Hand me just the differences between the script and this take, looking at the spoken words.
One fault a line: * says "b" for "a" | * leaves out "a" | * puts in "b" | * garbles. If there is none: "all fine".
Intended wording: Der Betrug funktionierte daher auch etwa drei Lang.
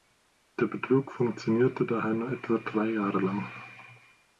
* says "nur" for "auch"
* puts in "Jahre"